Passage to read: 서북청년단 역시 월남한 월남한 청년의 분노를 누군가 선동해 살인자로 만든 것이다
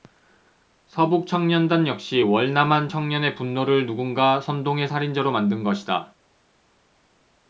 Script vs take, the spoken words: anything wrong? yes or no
yes